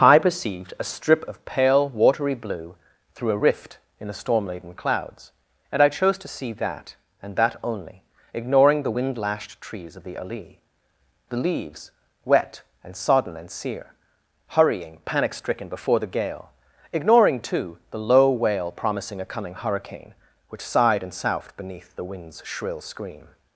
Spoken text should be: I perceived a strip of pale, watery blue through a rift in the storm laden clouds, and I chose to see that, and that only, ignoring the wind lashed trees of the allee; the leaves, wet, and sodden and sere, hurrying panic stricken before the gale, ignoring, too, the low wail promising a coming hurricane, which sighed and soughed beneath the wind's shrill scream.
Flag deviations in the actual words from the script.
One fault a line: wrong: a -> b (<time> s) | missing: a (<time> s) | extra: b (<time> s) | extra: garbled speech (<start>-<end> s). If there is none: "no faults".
no faults